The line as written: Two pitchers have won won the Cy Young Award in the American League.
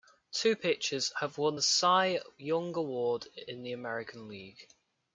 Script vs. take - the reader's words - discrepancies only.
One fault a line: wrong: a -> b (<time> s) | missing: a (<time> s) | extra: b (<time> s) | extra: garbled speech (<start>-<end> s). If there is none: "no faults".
missing: won (1.6 s)